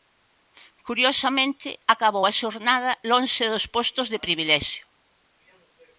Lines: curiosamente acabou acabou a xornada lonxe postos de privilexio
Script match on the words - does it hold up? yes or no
no